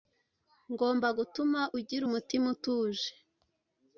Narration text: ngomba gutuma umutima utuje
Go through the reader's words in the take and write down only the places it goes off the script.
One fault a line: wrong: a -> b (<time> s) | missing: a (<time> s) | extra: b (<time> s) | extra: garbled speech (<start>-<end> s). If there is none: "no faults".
extra: ugira (1.8 s)